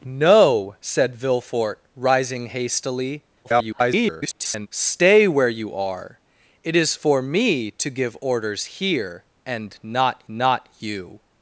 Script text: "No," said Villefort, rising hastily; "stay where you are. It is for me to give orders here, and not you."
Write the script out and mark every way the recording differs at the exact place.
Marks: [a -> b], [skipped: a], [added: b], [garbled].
"No," said Villefort, rising hastily; [garbled] "stay where you are. It is for me to give orders here, and not [added: not] you."